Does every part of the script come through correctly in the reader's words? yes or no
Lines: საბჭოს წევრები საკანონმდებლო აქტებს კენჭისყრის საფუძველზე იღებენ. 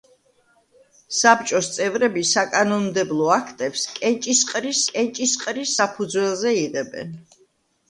no